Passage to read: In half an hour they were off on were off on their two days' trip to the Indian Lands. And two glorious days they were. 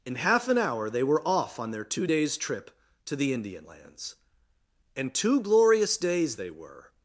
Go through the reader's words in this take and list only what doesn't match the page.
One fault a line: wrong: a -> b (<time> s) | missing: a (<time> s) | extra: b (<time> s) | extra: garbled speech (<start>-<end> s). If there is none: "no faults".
missing: were off on (1.7 s)